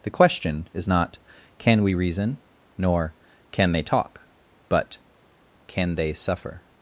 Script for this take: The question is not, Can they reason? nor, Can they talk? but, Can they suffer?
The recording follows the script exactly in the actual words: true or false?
false